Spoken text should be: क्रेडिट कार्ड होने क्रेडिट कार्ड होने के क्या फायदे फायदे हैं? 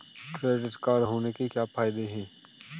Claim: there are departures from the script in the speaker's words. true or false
true